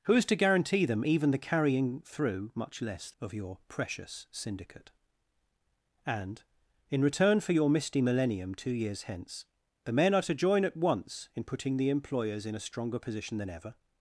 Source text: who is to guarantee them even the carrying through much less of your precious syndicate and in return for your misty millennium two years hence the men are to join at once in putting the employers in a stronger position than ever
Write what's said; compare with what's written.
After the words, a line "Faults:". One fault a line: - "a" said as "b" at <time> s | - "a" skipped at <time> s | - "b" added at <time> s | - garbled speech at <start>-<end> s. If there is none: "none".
who is to guarantee them even the carrying through much less of your precious syndicate and in return for your misty millennium two years hence the men are to join at once in putting the employers in a stronger position than ever
Faults:
none